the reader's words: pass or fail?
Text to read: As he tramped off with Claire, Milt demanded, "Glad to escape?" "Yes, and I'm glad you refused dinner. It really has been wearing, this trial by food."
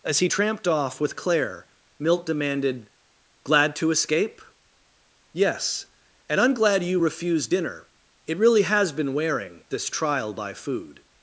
pass